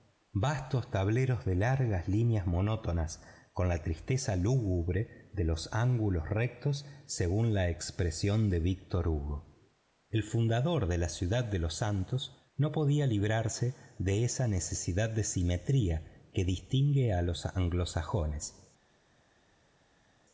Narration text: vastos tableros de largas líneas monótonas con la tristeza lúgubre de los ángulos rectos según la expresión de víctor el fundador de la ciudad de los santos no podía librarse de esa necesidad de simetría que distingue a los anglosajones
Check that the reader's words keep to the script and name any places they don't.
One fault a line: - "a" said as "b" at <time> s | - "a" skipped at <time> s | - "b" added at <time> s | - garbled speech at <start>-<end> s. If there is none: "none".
- "hugo" added at 9.1 s